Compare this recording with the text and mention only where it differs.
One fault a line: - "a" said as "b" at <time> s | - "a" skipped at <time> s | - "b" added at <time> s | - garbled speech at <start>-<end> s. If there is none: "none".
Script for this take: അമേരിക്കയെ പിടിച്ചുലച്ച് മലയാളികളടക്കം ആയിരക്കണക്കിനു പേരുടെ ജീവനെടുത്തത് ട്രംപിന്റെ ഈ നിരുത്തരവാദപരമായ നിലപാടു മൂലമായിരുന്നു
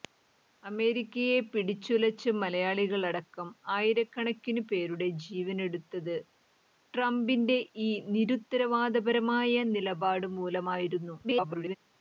- garbled speech at 11.2-11.8 s